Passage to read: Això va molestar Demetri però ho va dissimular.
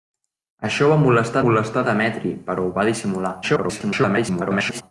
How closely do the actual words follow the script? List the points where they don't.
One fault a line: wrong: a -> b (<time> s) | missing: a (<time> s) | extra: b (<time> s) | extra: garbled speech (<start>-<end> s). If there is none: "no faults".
extra: molestar (1.4 s)
extra: garbled speech (3.4-4.8 s)